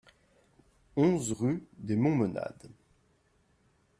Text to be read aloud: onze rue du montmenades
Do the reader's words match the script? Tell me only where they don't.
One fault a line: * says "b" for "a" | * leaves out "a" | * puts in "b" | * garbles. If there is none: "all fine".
* says "des" for "du"